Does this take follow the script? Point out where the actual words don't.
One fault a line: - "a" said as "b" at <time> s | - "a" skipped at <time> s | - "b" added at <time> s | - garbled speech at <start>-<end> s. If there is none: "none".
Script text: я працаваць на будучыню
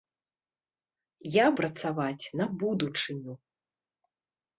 none